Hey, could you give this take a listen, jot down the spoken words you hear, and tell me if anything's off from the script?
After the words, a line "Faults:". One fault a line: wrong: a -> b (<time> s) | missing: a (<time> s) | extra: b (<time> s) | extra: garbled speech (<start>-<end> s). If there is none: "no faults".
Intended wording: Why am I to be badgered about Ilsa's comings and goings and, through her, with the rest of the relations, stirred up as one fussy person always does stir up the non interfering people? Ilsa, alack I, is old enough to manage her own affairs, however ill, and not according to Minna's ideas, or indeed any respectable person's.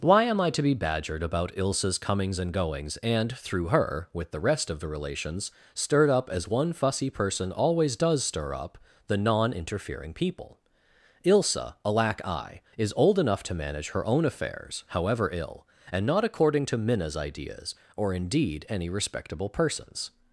Why am I to be badgered about Ilsa's comings and goings and, through her, with the rest of the relations, stirred up as one fussy person always does stir up the non interfering people? Ilsa, alack I, is old enough to manage her own affairs, however ill, and not according to Minna's ideas, or indeed any respectable person's.
Faults:
no faults